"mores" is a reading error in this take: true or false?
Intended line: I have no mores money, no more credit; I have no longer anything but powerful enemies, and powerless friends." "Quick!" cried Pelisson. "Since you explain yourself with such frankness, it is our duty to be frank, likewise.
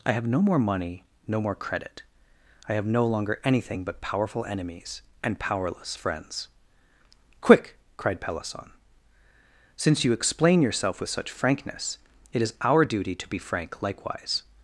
true